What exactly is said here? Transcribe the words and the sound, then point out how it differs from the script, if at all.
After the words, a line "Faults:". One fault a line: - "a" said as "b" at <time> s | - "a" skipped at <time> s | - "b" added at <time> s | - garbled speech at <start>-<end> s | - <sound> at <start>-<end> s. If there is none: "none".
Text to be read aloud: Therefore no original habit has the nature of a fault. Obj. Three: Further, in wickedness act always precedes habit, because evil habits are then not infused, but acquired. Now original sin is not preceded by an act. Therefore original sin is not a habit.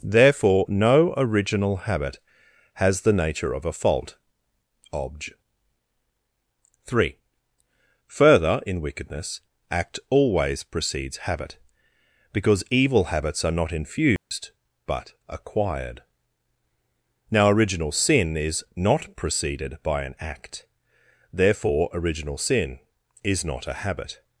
Therefore no original habit has the nature of a fault. Obj. Three: Further, in wickedness act always precedes habit, because evil habits are not infused, but acquired. Now original sin is not preceded by an act. Therefore original sin is not a habit.
Faults:
- "then" skipped at 13.6 s
- dropout at 14.2-14.3 s